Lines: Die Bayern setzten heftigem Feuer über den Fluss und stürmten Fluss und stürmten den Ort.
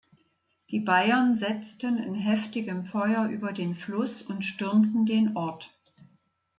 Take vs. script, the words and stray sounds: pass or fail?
fail